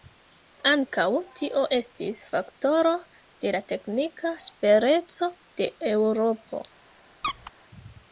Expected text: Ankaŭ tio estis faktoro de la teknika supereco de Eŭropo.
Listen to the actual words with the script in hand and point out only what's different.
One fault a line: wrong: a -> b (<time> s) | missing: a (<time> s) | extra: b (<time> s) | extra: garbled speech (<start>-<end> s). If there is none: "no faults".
no faults